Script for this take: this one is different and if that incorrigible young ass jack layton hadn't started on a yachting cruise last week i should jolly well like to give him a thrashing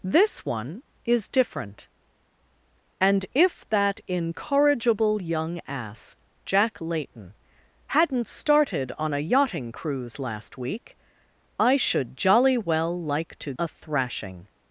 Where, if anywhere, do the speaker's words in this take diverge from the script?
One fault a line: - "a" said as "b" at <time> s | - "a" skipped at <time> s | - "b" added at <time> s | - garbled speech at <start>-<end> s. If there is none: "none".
- "give him" skipped at 13.5 s